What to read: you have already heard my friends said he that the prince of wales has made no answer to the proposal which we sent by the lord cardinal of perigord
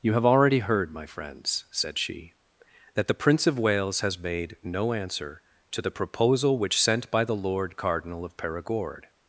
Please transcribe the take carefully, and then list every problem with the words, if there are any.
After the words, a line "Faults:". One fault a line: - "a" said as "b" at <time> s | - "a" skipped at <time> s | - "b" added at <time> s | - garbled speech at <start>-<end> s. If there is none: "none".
you have already heard my friends said she that the prince of wales has made no answer to the proposal which sent by the lord cardinal of perigord
Faults:
- "he" said as "she" at 2.0 s
- "we" skipped at 6.8 s